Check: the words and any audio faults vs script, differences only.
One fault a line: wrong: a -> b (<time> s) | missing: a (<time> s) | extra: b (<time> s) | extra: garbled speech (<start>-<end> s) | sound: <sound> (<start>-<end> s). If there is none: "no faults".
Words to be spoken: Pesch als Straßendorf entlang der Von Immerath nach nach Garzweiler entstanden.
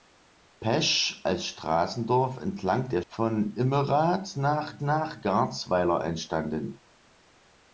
no faults